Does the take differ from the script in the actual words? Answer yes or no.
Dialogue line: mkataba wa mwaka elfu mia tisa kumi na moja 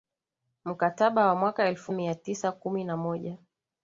no